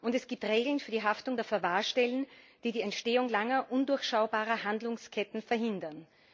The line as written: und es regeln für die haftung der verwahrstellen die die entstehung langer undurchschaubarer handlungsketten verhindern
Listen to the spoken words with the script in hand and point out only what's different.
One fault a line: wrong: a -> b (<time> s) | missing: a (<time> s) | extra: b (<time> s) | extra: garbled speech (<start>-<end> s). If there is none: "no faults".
extra: gibt (0.3 s)